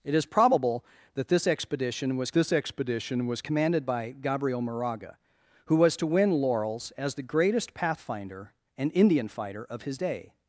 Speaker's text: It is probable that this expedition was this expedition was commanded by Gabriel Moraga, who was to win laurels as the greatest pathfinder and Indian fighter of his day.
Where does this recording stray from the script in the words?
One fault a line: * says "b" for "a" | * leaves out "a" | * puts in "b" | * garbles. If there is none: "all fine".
all fine